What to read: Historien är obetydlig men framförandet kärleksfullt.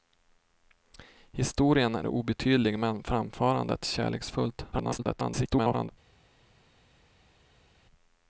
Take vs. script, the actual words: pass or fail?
fail